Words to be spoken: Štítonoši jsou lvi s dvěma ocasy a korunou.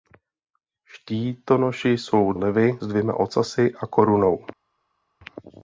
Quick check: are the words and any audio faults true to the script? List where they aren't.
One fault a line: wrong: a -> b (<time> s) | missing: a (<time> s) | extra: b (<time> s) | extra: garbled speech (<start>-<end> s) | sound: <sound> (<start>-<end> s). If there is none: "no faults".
no faults